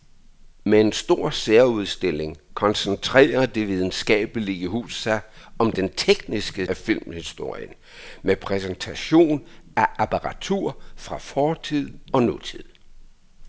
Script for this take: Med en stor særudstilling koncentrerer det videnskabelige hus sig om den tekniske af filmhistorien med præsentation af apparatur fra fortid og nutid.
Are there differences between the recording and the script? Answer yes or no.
no